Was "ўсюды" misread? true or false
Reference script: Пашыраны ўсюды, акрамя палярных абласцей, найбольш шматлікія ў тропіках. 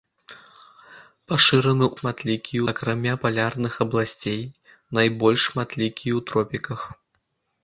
true